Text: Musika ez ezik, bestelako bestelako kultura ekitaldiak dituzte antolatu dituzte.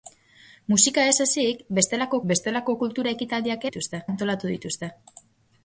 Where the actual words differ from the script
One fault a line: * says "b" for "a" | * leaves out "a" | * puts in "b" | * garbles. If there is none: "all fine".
all fine